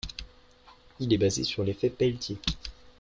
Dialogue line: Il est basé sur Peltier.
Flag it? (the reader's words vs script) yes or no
yes